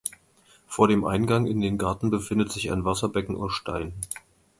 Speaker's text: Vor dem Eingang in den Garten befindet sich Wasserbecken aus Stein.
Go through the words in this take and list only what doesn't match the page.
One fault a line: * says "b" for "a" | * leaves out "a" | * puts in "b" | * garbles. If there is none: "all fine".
* puts in "ein"